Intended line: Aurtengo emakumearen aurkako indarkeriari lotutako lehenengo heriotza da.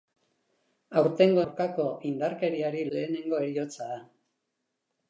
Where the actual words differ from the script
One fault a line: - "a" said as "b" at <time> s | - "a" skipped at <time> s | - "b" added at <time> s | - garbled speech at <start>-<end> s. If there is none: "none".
- "emakumearen" skipped at 1.4 s
- "lotutako" skipped at 2.8 s